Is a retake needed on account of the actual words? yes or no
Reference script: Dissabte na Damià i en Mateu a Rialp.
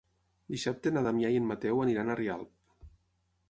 yes